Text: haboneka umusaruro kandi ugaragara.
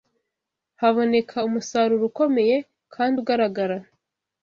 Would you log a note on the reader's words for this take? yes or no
yes